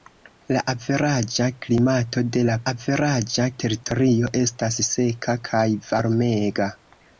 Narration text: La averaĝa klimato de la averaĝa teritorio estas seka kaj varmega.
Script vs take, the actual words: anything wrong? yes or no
no